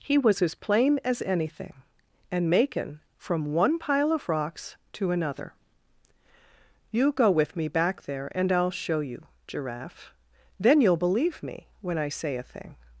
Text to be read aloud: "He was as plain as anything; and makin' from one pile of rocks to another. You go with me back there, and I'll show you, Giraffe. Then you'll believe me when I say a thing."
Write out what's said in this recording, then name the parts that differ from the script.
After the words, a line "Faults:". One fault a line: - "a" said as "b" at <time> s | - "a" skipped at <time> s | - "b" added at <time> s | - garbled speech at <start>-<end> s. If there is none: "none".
"He was as plain as anything; and makin' from one pile of rocks to another. You go with me back there, and I'll show you, Giraffe. Then you'll believe me when I say a thing."
Faults:
none